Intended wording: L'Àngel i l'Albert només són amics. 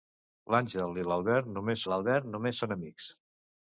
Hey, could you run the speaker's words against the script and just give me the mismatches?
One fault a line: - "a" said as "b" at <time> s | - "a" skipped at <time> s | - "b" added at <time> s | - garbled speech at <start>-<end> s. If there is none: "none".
- "l'Albert només" added at 1.9 s